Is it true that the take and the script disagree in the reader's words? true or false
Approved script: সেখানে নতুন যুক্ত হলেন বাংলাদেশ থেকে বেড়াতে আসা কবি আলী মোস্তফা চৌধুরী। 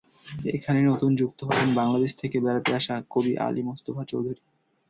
true